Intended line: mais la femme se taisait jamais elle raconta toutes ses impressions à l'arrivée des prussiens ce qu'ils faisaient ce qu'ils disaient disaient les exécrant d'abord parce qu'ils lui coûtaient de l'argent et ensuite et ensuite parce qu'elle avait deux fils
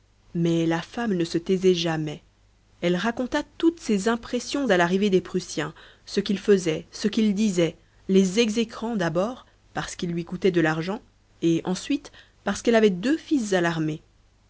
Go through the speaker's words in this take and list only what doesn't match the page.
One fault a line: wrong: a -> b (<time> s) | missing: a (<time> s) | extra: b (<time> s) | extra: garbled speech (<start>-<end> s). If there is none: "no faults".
extra: ne (1.1 s)
missing: disaient (7.8 s)
missing: et ensuite (12.1 s)